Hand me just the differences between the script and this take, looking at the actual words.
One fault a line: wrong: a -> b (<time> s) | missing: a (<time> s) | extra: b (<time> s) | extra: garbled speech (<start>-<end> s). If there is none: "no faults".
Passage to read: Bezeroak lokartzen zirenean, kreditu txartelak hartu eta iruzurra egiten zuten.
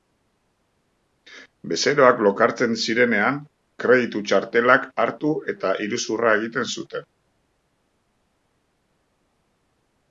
no faults